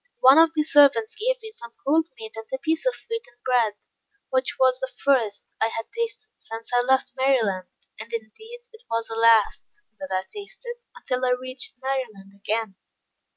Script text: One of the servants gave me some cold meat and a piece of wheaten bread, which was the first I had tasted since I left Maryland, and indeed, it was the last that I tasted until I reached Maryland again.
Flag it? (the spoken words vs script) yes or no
no